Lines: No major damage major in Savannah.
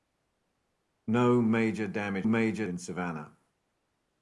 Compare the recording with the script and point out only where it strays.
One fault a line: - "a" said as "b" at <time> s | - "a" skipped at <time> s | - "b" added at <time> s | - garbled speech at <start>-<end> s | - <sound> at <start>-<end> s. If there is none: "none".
none